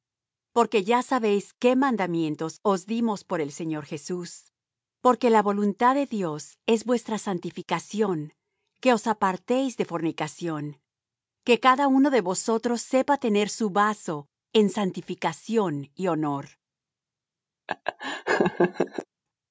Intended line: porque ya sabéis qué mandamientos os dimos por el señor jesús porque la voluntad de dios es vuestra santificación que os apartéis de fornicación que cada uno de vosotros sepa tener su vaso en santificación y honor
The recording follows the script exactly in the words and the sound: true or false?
false